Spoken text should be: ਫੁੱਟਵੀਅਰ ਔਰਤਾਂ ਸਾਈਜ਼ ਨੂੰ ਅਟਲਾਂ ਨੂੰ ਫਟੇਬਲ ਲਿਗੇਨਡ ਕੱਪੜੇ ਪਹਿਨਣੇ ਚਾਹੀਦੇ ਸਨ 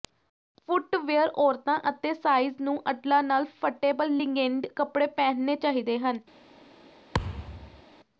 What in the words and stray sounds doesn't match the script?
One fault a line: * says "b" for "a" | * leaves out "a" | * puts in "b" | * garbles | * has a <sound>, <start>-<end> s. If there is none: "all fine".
* puts in "ਅਤੇ"
* says "ਨਾਲ" for "ਨੂੰ"
* says "ਹਨ" for "ਸਨ"
* has a thud, 7.1-7.8 s